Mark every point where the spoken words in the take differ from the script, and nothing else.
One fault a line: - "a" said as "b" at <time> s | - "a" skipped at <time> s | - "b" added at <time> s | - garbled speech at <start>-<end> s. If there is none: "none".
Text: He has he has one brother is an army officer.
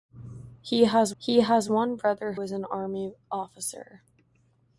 none